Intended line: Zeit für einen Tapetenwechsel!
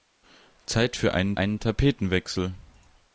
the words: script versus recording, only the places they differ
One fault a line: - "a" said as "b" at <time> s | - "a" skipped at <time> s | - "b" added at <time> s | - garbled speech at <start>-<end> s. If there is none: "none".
- "einen" added at 1.4 s